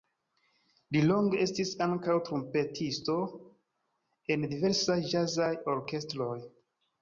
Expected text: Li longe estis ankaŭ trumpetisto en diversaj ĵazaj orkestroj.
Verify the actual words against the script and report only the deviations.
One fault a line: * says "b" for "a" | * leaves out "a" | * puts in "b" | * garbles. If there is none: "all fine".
all fine